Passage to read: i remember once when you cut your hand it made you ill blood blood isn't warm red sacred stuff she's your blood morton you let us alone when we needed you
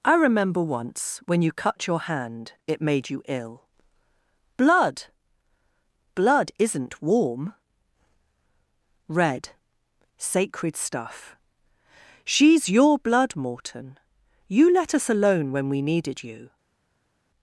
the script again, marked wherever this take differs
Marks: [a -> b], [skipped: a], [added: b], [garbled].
i remember once when you cut your hand it made you ill blood blood isn't warm red sacred stuff she's your blood morton you let us alone when we needed you